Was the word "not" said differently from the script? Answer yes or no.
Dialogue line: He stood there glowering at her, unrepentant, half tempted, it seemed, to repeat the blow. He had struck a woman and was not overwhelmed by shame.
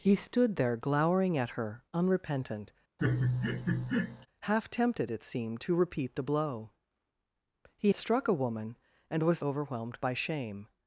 yes